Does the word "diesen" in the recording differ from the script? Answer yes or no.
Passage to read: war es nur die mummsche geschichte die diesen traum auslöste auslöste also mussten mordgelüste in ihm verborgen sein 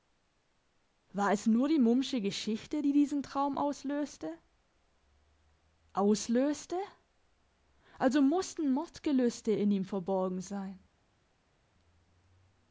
no